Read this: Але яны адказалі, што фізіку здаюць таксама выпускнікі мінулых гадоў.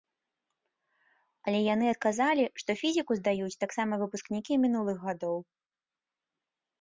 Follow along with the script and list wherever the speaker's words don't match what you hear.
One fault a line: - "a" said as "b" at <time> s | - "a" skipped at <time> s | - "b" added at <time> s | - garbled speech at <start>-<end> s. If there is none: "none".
none